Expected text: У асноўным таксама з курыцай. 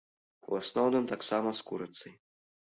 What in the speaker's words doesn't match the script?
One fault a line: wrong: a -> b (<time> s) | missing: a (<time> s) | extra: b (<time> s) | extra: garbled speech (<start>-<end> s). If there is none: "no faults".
no faults